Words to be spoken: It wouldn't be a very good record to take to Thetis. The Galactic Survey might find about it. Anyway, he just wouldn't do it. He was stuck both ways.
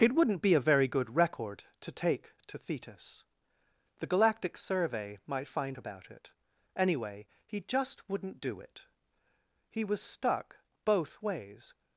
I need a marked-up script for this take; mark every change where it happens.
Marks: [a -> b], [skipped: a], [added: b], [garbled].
It wouldn't be a very good record to take to Thetis. The Galactic Survey might find about it. Anyway, he just wouldn't do it. He was stuck both ways.